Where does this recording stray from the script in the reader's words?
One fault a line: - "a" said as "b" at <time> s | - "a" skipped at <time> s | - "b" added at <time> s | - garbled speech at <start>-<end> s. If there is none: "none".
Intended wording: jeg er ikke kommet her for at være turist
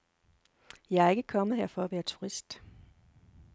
none